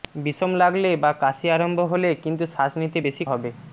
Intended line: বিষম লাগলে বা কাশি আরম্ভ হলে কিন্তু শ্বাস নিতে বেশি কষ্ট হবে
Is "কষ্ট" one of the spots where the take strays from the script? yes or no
yes